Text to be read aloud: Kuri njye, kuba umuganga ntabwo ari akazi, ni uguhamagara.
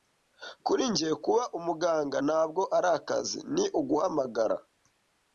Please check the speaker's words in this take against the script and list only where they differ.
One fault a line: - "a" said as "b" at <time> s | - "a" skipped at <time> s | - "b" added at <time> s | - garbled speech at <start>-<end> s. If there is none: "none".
none